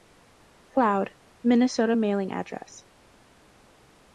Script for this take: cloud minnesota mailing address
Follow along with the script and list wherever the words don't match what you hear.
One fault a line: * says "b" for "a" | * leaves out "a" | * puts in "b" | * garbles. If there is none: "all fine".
all fine